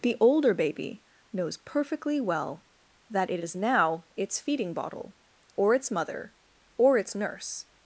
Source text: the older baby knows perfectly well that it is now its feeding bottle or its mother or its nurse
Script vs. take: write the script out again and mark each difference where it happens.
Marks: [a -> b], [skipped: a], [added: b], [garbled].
the older baby knows perfectly well that it is now its feeding bottle or its mother or its nurse